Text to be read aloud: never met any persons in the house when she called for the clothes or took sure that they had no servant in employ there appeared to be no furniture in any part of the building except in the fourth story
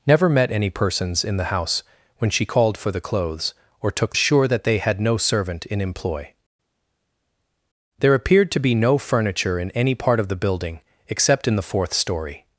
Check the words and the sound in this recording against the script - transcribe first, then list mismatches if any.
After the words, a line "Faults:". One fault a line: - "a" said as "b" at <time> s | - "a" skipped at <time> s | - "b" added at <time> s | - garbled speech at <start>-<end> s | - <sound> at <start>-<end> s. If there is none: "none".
never met any persons in the house when she called for the clothes or took sure that they had no servant in employ there appeared to be no furniture in any part of the building except in the fourth story
Faults:
none